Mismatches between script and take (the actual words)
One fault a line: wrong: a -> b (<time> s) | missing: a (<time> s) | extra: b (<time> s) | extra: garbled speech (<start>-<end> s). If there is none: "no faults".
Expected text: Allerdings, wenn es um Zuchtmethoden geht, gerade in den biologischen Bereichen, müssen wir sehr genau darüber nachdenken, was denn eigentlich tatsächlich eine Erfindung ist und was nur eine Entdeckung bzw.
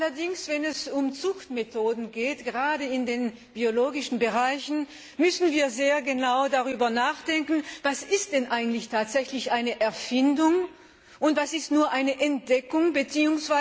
no faults